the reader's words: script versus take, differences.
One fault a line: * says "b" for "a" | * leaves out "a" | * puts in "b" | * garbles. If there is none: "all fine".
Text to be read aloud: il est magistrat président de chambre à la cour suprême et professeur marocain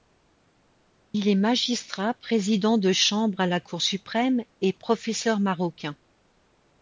all fine